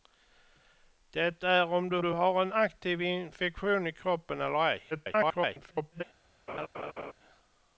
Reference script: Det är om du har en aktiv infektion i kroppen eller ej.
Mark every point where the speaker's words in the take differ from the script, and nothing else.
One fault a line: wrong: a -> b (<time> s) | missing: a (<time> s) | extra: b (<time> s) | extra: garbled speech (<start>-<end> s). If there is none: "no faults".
extra: du (2.0 s)
extra: garbled speech (4.9-6.0 s)